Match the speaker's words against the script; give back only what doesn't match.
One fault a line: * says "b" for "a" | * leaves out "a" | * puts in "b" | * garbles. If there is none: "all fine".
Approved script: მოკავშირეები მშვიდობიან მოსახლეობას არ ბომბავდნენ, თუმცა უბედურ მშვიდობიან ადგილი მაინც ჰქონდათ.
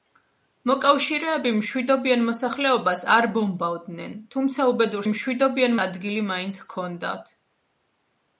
all fine